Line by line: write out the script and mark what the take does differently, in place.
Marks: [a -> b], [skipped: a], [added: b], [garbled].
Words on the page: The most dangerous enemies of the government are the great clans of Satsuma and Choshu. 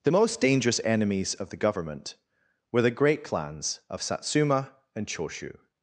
The most dangerous enemies of the government [are -> were] the great clans of Satsuma and Choshu.